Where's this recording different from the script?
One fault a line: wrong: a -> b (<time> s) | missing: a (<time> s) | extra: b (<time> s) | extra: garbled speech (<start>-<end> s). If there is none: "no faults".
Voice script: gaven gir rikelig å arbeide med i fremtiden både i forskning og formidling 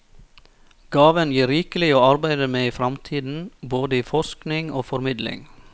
no faults